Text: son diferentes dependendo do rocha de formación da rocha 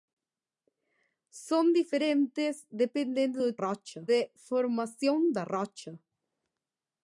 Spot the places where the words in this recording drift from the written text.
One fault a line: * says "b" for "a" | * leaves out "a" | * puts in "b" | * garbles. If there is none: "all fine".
all fine